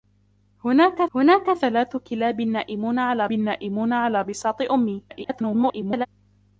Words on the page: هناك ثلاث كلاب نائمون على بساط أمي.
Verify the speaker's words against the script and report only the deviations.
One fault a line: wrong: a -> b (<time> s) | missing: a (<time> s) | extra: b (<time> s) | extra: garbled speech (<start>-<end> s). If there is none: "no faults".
extra: هناك (1.2 s)
extra: نائمون على (3.3 s)
extra: garbled speech (5.1-6.1 s)